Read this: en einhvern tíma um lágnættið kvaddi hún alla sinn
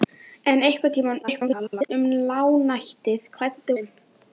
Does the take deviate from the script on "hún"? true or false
true